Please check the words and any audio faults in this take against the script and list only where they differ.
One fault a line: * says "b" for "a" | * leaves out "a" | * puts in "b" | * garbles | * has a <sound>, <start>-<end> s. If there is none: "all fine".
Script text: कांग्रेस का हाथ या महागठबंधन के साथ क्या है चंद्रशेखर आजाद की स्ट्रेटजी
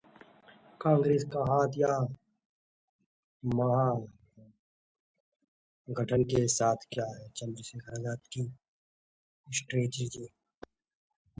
all fine